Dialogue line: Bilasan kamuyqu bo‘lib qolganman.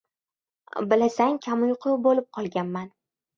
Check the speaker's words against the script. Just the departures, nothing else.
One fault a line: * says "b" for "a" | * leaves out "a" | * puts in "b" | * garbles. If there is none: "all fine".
all fine